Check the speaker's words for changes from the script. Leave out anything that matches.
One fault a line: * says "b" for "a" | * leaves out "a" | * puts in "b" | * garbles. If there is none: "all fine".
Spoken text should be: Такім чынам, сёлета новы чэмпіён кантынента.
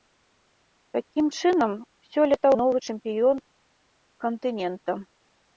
all fine